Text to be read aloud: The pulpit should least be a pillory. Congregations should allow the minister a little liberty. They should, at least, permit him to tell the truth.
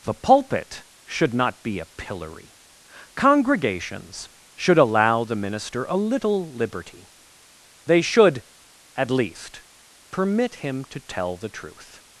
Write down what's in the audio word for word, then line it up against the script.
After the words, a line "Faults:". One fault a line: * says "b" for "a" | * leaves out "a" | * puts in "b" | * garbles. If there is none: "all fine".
The pulpit should not be a pillory. Congregations should allow the minister a little liberty. They should, at least, permit him to tell the truth.
Faults:
* says "not" for "least"